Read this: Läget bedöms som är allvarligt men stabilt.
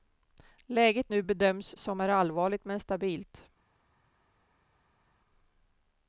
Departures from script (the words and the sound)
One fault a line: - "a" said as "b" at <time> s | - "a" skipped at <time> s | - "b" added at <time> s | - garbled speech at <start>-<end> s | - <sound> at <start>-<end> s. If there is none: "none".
- "nu" added at 1.1 s